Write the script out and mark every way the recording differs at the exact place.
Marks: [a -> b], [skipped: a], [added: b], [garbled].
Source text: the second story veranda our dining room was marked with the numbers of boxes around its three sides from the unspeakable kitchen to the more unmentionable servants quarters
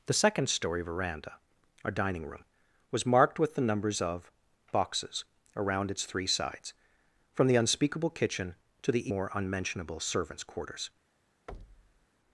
the second story veranda our dining room was marked with the numbers of boxes around its three sides from the unspeakable kitchen to the more unmentionable servants quarters